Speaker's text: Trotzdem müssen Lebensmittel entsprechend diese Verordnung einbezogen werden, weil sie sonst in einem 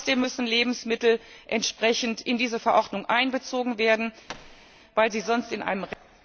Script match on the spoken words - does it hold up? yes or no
no